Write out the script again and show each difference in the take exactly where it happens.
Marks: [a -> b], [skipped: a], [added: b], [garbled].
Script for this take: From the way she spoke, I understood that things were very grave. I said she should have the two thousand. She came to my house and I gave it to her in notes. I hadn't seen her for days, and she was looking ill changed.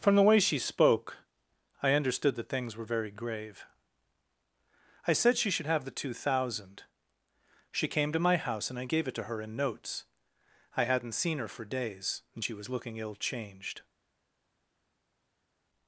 From the way she spoke, I understood that things were very grave. I said she should have the two thousand. She came to my house and I gave it to her in notes. I hadn't seen her for days, and she was looking ill changed.